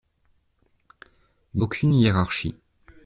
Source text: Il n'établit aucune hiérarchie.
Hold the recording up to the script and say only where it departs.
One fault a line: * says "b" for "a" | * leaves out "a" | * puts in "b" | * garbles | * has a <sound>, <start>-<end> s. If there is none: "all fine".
* leaves out "n'établit"